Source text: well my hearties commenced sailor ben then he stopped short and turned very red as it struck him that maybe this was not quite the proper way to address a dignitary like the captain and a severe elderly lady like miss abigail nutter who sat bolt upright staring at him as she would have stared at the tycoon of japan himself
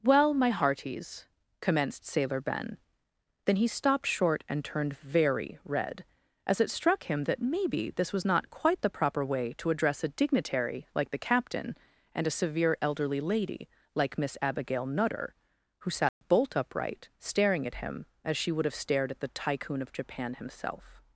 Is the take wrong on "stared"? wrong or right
right